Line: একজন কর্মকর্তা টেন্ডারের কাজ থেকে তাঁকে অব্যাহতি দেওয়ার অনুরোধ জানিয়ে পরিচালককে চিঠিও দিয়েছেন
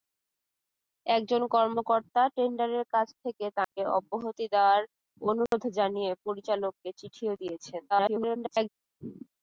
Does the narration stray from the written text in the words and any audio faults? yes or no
yes